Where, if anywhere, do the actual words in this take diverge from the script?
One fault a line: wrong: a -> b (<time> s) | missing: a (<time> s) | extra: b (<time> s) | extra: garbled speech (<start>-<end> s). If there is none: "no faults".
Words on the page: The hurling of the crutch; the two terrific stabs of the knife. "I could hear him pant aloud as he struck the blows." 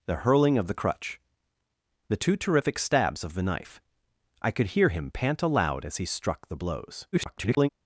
extra: garbled speech (7.1-7.7 s)